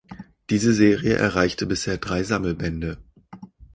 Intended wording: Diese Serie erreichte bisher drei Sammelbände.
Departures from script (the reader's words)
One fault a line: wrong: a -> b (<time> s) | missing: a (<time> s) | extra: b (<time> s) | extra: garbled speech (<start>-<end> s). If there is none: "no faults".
no faults